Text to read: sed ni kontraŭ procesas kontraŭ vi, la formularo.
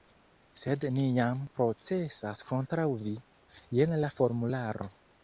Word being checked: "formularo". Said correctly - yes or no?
yes